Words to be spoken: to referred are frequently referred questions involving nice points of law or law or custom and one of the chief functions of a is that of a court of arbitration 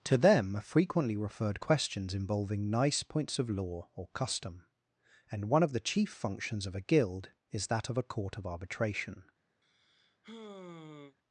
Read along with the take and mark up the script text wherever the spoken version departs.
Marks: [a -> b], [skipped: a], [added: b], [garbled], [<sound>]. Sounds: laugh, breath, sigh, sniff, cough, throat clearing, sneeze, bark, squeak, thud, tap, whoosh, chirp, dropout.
to [referred -> them] are frequently referred questions involving nice points of law or [skipped: law or] custom and one of the chief functions of a [added: guild] is that of a court of arbitration [sigh]